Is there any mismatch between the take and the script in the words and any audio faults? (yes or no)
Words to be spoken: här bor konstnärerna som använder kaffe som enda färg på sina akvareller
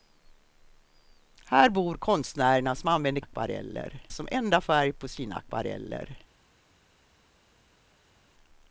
yes